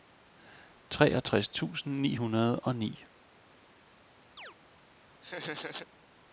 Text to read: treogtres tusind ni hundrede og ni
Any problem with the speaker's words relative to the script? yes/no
no